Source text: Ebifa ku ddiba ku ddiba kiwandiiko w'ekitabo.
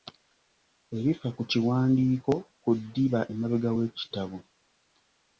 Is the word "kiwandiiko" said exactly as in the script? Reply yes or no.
no